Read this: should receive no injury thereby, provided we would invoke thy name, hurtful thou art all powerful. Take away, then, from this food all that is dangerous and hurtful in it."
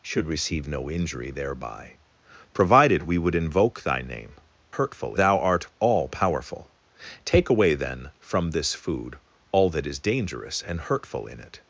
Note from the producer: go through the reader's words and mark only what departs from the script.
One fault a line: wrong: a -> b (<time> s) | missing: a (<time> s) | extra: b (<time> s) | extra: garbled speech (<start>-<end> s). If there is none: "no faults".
no faults